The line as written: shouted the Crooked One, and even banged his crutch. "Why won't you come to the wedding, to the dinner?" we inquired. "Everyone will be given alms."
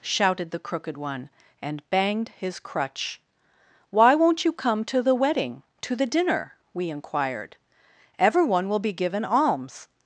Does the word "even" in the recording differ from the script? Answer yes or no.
yes